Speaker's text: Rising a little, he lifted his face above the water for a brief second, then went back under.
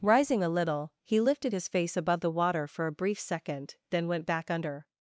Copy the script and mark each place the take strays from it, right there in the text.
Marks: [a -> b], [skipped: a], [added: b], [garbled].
Rising a little, he lifted his face above the water for a brief second, then went back under.